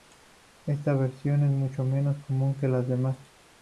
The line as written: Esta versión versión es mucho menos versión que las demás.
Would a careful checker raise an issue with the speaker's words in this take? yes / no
yes